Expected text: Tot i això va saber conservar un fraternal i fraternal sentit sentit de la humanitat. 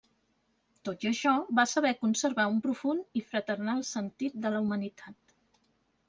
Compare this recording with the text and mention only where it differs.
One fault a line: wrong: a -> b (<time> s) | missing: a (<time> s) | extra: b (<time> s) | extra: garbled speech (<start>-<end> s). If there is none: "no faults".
wrong: fraternal -> profund (2.7 s)
missing: sentit (4.4 s)